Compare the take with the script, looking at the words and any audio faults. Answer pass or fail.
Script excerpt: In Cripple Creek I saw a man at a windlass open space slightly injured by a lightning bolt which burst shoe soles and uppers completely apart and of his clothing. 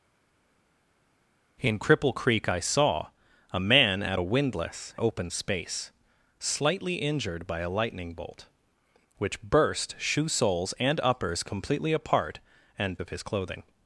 pass